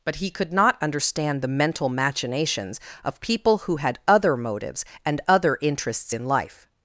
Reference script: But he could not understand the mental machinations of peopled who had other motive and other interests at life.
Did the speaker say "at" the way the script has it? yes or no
no